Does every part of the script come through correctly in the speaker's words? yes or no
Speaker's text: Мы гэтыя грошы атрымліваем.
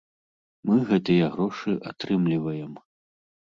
yes